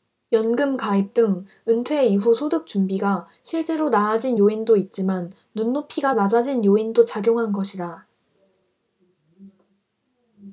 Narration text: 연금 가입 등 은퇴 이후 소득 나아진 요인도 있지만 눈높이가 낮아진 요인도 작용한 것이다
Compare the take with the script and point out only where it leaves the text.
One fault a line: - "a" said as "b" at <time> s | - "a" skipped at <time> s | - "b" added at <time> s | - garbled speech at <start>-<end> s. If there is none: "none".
- "준비가 실제로" added at 2.6 s